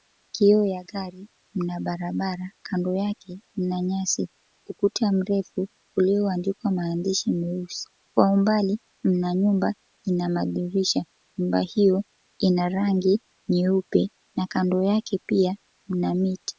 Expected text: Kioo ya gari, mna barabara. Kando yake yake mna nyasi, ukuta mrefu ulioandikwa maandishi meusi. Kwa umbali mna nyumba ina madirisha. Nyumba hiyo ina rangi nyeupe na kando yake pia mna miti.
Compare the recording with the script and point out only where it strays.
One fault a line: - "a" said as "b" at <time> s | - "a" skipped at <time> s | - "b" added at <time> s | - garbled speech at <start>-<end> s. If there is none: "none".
- "yake" skipped at 3.4 s